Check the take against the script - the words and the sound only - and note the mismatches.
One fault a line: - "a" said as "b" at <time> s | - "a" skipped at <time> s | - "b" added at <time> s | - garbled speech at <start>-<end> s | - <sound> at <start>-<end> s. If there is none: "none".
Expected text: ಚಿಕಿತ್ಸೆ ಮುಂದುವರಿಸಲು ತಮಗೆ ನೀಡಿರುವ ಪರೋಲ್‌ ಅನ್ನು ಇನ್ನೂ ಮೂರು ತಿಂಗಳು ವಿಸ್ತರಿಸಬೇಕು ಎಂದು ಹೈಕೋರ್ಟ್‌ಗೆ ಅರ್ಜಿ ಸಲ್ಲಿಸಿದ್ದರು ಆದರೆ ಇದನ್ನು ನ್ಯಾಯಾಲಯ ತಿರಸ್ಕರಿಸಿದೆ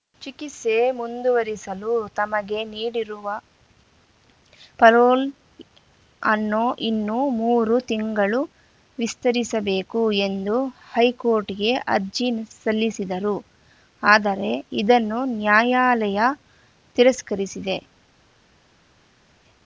none